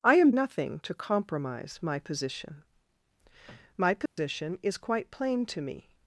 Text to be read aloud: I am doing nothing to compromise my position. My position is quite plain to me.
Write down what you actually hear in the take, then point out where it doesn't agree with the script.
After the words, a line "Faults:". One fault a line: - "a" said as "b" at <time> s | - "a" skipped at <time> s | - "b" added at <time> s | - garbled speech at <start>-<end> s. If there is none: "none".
I am nothing to compromise my position. My position is quite plain to me.
Faults:
- "doing" skipped at 0.3 s